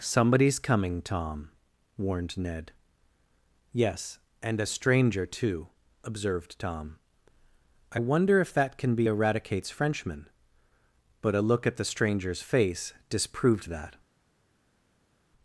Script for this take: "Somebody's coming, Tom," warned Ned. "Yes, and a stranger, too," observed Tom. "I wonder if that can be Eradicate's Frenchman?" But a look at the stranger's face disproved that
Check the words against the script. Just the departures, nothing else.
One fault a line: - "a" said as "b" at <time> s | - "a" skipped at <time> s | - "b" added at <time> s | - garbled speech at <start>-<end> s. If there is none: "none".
none